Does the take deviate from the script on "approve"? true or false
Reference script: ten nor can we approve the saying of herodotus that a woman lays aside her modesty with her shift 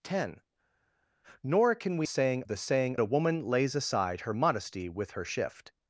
true